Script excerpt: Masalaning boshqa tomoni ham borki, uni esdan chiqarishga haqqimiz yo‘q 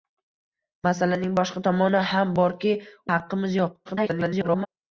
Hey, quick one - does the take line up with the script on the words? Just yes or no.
no